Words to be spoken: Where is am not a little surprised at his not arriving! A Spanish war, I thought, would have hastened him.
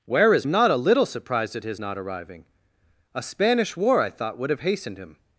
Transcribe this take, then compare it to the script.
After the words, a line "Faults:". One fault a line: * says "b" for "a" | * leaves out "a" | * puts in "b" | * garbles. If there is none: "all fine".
Where is am not a little surprised at his not arriving! A Spanish war, I thought, would have hastened him.
Faults:
all fine